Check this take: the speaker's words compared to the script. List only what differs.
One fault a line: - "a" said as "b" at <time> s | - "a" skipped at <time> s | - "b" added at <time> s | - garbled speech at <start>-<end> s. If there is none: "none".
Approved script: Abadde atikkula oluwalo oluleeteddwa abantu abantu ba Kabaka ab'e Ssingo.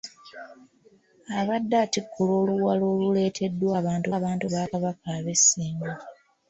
none